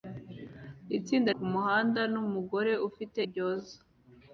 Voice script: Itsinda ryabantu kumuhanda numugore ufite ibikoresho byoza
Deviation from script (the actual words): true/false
true